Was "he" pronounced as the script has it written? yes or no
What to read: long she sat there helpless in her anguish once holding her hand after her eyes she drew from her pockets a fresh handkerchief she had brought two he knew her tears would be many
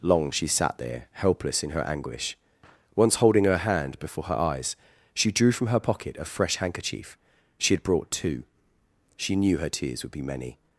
no